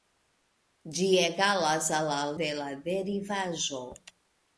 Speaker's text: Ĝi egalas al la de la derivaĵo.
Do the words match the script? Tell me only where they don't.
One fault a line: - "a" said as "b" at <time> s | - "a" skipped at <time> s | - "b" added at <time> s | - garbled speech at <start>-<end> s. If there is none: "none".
none